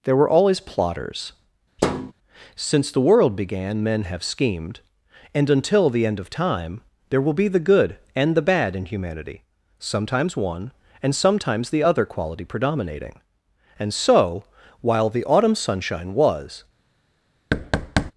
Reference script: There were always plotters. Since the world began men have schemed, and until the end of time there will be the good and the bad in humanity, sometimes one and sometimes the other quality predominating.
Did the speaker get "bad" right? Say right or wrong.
right